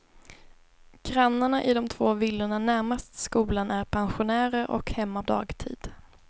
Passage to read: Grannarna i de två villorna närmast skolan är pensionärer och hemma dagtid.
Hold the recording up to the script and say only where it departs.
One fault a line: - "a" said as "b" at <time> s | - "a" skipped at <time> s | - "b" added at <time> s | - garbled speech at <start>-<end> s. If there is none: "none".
none